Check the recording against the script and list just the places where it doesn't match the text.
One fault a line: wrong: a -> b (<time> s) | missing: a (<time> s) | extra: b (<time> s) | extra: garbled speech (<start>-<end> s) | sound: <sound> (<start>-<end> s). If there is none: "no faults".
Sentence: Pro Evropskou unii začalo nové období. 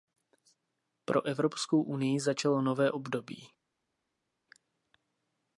no faults